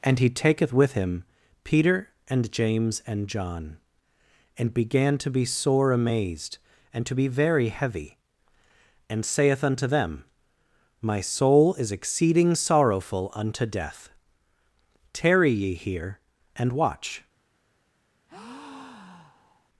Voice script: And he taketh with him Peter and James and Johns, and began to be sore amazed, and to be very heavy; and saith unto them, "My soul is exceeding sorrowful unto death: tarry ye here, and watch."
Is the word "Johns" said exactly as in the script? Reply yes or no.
no